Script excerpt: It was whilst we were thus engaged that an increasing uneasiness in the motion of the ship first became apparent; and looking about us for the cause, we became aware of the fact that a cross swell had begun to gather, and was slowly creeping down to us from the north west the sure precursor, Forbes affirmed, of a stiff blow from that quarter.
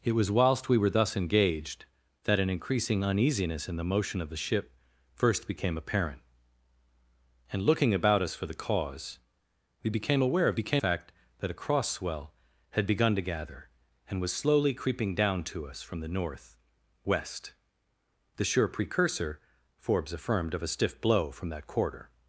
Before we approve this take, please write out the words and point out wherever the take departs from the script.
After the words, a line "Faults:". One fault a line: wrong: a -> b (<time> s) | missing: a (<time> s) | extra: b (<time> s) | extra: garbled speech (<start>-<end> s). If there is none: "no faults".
It was whilst we were thus engaged that an increasing uneasiness in the motion of the ship first became apparent; and looking about us for the cause, we became aware of became fact that a cross swell had begun to gather, and was slowly creeping down to us from the north west the sure precursor, Forbes affirmed, of a stiff blow from that quarter.
Faults:
wrong: the -> became (10.5 s)